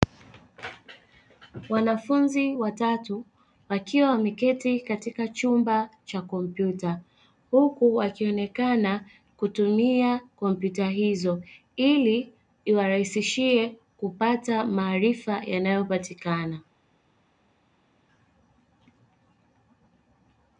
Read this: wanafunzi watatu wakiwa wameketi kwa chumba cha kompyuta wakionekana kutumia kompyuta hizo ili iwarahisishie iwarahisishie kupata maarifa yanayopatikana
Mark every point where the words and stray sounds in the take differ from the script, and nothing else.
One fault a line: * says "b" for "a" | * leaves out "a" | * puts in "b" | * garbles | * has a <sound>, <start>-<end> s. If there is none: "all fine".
* says "katika" for "kwa"
* puts in "huku"
* leaves out "iwarahisishie"